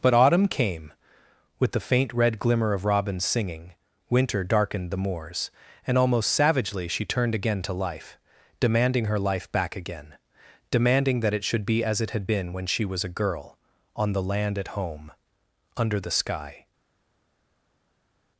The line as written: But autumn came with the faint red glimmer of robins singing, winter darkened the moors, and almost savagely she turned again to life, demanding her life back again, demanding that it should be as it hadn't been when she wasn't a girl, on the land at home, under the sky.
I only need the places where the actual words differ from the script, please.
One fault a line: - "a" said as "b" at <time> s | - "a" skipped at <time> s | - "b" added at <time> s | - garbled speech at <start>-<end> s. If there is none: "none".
- "hadn't" said as "had" at 12.1 s
- "wasn't" said as "was" at 12.8 s